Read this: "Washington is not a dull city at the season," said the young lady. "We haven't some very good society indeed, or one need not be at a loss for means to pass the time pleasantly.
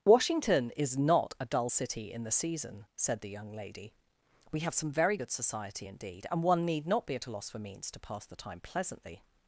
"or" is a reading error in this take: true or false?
true